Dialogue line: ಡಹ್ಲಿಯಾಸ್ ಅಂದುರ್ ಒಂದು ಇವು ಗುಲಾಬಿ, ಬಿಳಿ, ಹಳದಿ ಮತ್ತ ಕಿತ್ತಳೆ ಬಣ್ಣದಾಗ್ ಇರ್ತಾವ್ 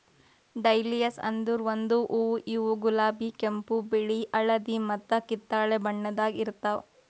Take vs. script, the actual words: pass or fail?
fail